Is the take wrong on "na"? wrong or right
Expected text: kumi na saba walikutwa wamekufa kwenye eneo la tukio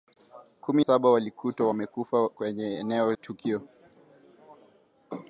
wrong